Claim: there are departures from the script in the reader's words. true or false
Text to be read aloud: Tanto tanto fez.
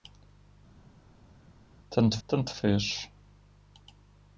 false